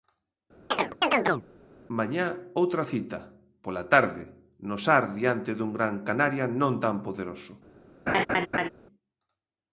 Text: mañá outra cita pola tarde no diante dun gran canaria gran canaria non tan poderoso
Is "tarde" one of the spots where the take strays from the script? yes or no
no